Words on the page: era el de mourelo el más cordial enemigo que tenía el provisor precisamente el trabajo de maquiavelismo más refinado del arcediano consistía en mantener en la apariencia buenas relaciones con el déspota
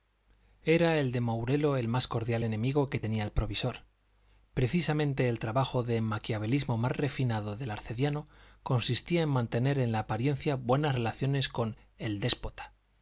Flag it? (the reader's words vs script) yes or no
no